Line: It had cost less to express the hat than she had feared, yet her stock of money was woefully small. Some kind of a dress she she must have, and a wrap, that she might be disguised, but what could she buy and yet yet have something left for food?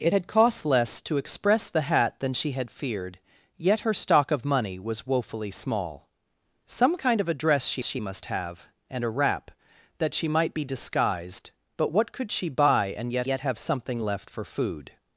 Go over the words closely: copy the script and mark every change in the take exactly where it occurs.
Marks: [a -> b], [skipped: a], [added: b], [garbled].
It had cost less to express the hat than she had feared, yet her stock of money was woefully small. Some kind of a dress she she must have, and a wrap, that she might be disguised, but what could she buy and yet yet have something left for food?